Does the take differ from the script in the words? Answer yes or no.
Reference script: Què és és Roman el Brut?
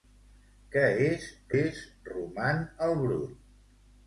no